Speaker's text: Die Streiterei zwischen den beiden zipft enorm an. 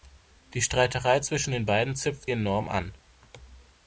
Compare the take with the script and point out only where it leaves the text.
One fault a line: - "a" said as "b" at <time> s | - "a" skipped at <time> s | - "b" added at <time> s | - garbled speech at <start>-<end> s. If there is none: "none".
none